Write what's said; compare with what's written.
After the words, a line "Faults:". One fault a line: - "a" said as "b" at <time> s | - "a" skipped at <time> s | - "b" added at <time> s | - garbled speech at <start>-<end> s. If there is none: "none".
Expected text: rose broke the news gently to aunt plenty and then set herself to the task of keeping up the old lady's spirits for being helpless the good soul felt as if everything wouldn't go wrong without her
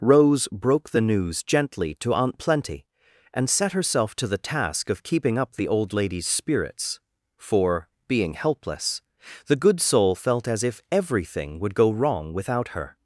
rose broke the news gently to aunt plenty and set herself to the task of keeping up the old lady's spirits for being helpless the good soul felt as if everything would go wrong without her
Faults:
- "then" skipped at 3.5 s
- "wouldn't" said as "would" at 11.6 s